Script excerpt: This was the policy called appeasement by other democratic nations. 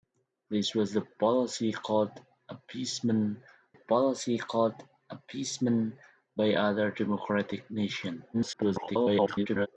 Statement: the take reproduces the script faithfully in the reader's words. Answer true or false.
false